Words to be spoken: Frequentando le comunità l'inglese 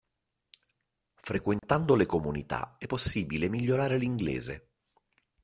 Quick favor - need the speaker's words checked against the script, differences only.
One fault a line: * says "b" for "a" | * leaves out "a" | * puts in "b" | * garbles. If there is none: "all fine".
* puts in "è possibile migliorare"